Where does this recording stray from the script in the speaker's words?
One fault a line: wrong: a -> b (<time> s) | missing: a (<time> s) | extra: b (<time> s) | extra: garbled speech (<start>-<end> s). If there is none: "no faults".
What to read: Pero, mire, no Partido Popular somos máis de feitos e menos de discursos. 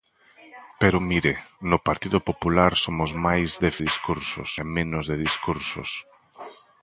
wrong: feitos -> discursos (3.9 s)